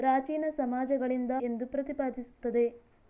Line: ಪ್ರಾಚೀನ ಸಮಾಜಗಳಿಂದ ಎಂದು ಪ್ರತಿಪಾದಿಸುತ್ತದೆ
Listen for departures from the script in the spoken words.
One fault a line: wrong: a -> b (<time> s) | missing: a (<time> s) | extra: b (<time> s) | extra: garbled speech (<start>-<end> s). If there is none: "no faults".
no faults